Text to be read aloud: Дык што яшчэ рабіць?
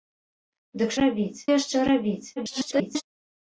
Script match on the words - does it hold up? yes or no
no